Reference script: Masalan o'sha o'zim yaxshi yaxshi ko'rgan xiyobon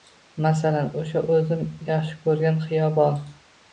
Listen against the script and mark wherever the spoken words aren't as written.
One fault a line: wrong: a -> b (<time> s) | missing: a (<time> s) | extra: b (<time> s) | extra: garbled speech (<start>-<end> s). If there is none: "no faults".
missing: yaxshi (2.2 s)